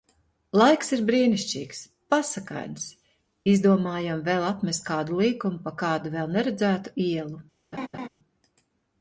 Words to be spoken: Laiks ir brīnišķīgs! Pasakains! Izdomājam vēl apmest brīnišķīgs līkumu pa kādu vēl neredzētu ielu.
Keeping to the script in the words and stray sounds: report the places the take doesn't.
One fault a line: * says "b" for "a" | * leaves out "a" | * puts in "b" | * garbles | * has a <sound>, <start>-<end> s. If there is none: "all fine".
* says "kādu" for "brīnišķīgs"
* has a laugh, 7.7-8.1 s